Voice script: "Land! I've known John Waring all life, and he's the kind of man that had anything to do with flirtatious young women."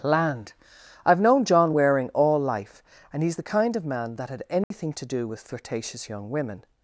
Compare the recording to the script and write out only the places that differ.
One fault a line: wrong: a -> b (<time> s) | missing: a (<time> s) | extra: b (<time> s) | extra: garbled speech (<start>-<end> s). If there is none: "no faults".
no faults